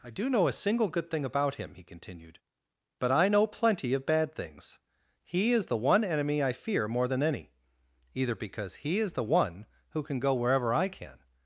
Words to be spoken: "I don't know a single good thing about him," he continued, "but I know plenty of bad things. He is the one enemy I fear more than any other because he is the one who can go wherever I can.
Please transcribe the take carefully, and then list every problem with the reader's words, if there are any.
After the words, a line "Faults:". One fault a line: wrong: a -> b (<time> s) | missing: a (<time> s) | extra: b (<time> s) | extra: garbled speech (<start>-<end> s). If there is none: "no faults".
"I do know a single good thing about him," he continued, "but I know plenty of bad things. He is the one enemy I fear more than any either because he is the one who can go wherever I can.
Faults:
wrong: don't -> do (0.1 s)
wrong: other -> either (8.1 s)